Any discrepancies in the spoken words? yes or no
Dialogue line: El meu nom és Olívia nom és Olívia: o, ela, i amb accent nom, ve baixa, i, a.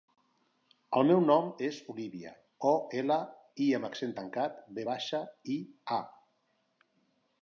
yes